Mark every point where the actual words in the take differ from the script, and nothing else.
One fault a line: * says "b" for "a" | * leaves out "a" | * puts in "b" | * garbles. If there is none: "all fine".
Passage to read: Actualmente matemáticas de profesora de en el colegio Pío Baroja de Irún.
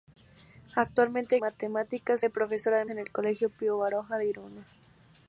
all fine